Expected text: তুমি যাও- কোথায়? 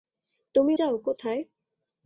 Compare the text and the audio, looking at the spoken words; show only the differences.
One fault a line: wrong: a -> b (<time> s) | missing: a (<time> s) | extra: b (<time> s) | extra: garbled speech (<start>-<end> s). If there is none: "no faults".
no faults